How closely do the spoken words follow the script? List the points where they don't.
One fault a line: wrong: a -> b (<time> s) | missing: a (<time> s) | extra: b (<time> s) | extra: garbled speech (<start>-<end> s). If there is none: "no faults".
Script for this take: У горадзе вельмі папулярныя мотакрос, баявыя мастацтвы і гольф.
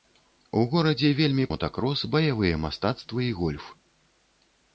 missing: папулярныя (1.4 s)